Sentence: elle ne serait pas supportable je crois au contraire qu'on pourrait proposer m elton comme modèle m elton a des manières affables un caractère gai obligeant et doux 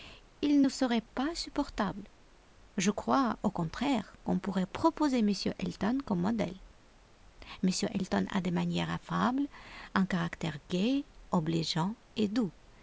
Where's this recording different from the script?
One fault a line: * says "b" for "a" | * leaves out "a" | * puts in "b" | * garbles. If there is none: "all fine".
* says "il" for "elle"